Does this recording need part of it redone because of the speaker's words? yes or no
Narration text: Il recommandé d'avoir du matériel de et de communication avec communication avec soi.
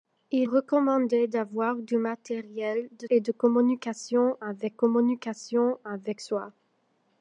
no